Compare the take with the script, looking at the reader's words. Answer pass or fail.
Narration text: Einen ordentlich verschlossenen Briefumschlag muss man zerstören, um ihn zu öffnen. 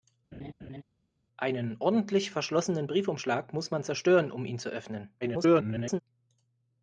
fail